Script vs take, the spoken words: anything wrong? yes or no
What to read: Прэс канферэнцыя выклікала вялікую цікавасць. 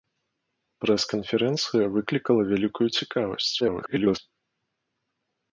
yes